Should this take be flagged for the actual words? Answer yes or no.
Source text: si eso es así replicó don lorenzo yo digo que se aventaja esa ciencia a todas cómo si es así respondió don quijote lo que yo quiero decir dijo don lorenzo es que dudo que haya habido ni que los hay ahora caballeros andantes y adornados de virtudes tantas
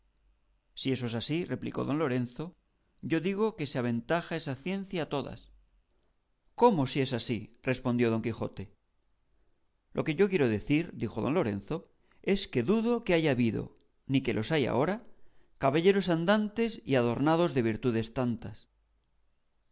no